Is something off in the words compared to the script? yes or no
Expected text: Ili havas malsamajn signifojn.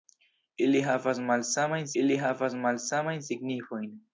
yes